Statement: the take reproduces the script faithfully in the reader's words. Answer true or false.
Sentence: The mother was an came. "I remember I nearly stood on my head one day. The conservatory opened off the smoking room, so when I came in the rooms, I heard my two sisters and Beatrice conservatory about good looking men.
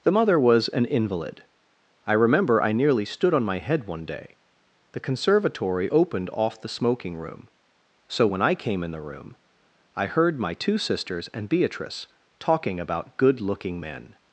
false